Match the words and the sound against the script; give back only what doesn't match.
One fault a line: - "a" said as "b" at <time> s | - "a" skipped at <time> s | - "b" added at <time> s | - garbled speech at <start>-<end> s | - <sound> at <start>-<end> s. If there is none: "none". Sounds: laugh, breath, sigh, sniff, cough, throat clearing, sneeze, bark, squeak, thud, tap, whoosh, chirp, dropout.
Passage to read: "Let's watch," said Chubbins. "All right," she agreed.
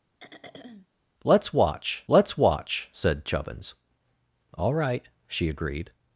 - throat clearing at 0.2-0.9 s
- "let's watch" added at 2.1 s